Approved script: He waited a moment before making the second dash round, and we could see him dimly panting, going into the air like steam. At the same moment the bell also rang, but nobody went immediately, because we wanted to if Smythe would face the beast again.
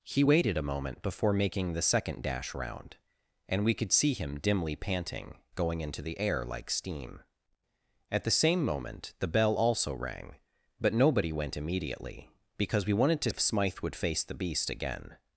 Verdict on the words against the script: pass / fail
pass